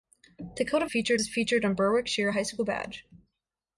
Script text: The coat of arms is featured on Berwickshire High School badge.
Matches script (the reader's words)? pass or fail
fail